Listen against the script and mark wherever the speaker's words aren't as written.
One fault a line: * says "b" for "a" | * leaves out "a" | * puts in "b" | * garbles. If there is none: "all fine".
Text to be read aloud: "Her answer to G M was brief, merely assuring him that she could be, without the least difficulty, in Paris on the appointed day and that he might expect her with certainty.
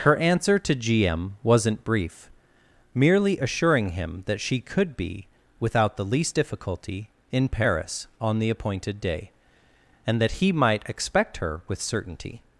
* says "wasn't" for "was"